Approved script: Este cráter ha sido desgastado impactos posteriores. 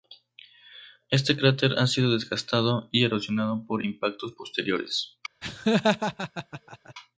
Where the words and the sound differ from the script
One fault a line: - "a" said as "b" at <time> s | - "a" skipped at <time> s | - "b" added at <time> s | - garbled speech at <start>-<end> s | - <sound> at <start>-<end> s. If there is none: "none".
- "y erosionado por" added at 2.9 s
- laugh at 5.4-6.9 s